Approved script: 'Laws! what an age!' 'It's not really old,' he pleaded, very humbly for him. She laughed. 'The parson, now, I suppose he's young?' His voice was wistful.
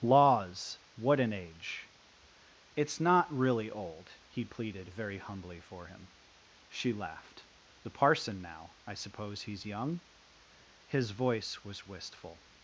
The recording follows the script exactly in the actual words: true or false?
true